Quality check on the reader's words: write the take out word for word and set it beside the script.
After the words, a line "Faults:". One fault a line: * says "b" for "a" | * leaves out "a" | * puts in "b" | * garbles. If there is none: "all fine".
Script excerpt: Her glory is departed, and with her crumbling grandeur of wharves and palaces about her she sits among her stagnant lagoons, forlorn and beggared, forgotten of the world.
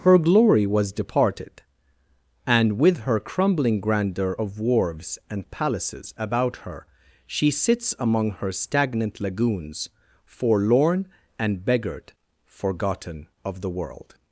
Her glory was departed, and with her crumbling grandeur of wharves and palaces about her she sits among her stagnant lagoons, forlorn and beggared, forgotten of the world.
Faults:
* says "was" for "is"